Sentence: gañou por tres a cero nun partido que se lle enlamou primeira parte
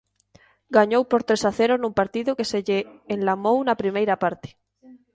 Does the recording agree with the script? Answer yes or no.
no